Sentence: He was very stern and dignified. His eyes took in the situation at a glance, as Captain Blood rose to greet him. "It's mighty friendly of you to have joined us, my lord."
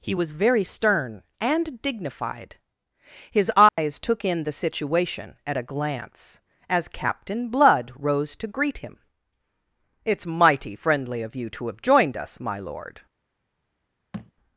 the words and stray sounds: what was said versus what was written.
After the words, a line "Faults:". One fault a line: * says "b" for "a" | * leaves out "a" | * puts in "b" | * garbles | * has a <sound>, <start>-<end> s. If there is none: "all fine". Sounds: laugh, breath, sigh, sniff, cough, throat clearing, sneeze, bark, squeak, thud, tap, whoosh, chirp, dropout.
He was very stern and dignified. His eyes took in the situation at a glance, as Captain Blood rose to greet him. "It's mighty friendly of you to have joined us, my lord."
Faults:
* has a dropout, 3.7-3.8 s
* has a thud, 14.1-14.3 s